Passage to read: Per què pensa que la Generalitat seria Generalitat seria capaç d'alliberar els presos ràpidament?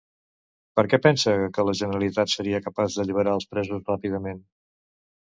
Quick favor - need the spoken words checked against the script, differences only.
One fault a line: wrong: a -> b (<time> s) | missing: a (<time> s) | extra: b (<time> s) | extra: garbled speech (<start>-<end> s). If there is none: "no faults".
missing: Generalitat seria (2.6 s)